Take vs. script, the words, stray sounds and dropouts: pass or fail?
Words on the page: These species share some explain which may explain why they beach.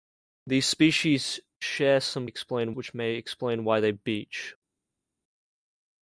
pass